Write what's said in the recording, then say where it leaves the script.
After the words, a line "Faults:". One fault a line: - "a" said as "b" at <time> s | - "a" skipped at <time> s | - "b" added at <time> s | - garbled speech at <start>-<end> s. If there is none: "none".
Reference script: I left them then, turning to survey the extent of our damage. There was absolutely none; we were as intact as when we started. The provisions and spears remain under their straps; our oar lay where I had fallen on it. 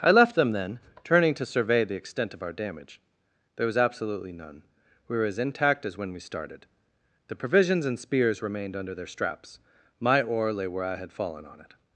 I left them then, turning to survey the extent of our damage. There was absolutely none; we were as intact as when we started. The provisions and spears remained under their straps; my oar lay where I had fallen on it.
Faults:
- "remain" said as "remained" at 8.4 s
- "our" said as "my" at 10.0 s